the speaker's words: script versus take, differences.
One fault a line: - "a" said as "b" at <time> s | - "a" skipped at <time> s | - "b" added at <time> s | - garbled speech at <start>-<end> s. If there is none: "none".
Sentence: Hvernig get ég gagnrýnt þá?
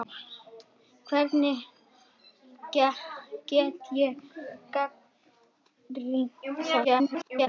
- garbled speech at 6.8-7.5 s